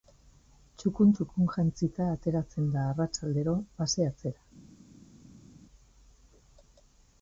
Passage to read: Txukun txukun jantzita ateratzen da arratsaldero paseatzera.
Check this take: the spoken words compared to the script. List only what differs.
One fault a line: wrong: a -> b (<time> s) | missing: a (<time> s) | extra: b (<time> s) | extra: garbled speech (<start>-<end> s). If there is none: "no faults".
no faults